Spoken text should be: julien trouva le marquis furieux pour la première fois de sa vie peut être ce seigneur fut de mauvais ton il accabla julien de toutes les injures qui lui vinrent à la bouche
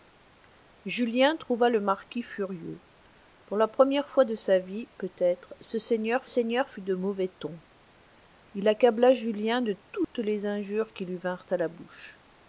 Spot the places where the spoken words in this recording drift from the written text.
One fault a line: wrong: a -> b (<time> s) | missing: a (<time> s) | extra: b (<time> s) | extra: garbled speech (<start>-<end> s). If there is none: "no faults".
extra: seigneur (6.2 s)